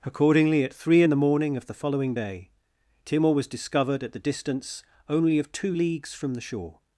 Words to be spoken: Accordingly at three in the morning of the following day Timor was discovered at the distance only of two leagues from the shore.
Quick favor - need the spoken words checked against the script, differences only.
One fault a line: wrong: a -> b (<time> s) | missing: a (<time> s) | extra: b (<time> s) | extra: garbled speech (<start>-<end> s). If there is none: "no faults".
no faults